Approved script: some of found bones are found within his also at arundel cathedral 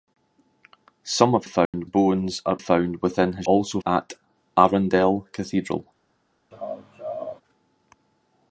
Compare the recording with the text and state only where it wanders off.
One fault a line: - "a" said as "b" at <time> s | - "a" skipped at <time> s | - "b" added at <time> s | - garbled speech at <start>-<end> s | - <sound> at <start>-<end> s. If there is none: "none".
- dropout at 1.7-1.7 s
- laugh at 6.5-7.4 s